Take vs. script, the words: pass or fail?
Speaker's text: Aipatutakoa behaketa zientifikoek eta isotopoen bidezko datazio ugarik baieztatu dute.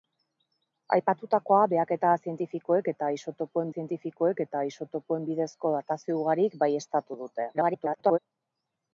fail